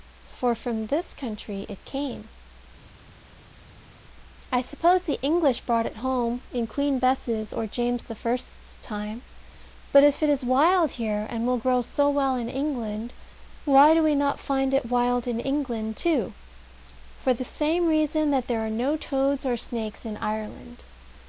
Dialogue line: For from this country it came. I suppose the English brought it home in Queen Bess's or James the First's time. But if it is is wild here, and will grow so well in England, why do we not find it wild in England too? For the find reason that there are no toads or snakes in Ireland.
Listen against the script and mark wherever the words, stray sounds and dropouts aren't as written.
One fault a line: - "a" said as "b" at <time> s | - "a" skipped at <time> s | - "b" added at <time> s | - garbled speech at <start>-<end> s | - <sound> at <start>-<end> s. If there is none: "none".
- "is" skipped at 10.4 s
- "find" said as "same" at 17.4 s